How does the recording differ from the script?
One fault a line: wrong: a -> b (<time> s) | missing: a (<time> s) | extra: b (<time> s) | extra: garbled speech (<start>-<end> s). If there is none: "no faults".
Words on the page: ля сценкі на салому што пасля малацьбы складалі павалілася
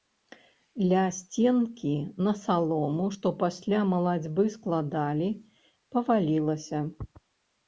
no faults